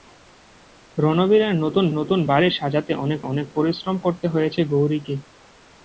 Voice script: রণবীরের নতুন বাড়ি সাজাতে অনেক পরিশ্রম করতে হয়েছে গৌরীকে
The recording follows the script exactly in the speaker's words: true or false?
false